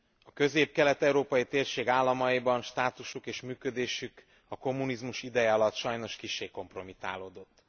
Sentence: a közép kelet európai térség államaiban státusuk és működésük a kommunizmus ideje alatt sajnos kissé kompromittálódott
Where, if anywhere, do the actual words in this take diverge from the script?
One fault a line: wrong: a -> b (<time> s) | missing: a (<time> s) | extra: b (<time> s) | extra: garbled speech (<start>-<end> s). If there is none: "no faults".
no faults